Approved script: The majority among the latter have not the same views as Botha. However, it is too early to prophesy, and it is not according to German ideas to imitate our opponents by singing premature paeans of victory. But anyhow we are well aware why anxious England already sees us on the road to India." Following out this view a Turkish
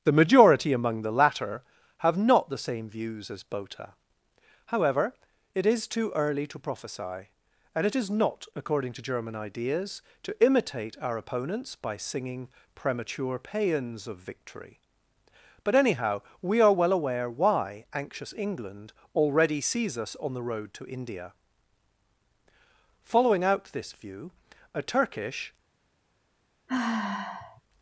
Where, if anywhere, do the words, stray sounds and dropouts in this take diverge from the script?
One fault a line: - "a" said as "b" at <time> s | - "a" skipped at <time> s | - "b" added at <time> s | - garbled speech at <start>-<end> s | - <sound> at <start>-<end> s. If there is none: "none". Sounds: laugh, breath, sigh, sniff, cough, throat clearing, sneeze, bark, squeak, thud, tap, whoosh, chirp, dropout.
- sigh at 26.7-27.6 s